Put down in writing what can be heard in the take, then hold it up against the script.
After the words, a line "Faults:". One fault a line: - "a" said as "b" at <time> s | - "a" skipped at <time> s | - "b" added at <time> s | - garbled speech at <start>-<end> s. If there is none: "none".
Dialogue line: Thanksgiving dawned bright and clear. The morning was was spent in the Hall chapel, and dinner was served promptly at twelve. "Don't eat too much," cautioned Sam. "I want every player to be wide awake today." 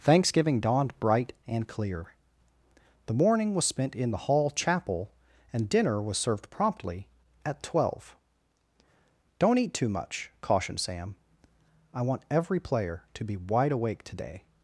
Thanksgiving dawned bright and clear. The morning was spent in the Hall chapel, and dinner was served promptly at twelve. "Don't eat too much," cautioned Sam. "I want every player to be wide awake today."
Faults:
- "was" skipped at 3.6 s